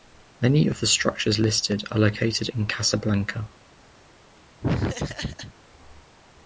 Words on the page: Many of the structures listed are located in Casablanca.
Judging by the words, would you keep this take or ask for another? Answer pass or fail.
pass